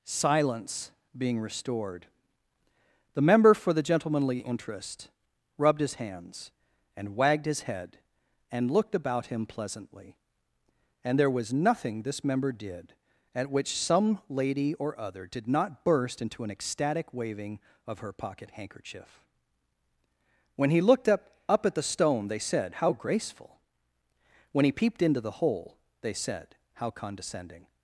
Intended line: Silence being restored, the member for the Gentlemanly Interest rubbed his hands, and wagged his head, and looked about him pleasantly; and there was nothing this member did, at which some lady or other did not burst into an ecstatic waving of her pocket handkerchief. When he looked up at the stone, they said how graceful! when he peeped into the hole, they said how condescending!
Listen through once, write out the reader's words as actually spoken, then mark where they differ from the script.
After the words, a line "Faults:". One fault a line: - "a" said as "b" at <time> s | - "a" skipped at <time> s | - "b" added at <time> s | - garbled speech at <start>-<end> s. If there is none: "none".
Silence being restored, the member for the Gentlemanly Interest rubbed his hands, and wagged his head, and looked about him pleasantly; and there was nothing this member did, at which some lady or other did not burst into an ecstatic waving of her pocket handkerchief. When he looked up up at the stone, they said how graceful! when he peeped into the hole, they said how condescending!
Faults:
- "up" added at 21.5 s